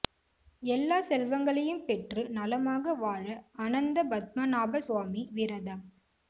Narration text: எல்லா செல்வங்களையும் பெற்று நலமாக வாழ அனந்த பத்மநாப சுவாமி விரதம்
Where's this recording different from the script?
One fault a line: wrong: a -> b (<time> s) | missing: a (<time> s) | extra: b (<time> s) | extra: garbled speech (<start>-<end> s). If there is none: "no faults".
no faults